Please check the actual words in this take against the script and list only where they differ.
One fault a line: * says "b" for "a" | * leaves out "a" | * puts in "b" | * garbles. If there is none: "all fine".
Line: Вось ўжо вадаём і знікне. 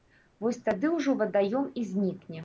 * puts in "тады"